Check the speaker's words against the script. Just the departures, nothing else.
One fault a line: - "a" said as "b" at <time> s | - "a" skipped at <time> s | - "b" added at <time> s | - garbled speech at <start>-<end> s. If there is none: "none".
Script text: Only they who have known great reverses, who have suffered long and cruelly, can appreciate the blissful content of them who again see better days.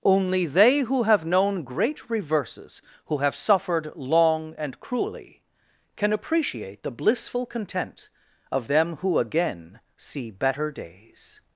none